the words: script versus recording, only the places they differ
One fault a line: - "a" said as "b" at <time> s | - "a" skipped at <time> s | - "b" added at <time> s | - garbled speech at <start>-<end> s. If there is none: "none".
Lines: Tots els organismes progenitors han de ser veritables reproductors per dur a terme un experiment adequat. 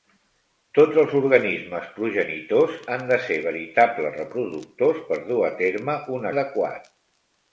- "experiment" skipped at 6.3 s